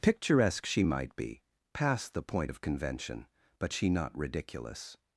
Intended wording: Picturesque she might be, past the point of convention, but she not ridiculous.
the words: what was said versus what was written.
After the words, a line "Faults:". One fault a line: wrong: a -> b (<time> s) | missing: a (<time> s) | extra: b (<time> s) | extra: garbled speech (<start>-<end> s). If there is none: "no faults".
Picturesque she might be, past the point of convention, but she not ridiculous.
Faults:
no faults